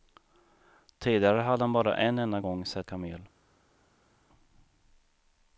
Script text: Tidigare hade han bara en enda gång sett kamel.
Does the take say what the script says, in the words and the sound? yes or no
yes